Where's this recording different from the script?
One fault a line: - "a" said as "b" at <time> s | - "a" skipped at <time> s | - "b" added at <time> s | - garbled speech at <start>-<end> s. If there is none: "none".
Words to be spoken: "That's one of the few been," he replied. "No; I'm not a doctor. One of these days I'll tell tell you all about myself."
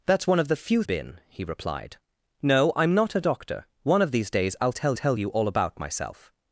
none